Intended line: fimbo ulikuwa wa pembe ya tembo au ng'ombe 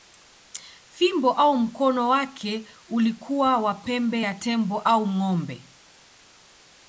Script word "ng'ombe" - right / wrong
right